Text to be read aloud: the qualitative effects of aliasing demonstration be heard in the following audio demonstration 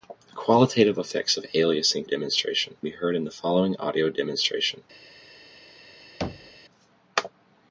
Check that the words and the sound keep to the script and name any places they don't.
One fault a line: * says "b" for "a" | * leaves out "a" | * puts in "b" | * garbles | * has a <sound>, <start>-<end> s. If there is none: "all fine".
* has a thud, 6.2-6.6 s